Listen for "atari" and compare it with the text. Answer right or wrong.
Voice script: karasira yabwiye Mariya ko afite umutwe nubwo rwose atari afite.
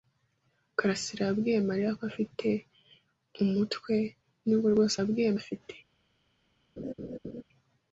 wrong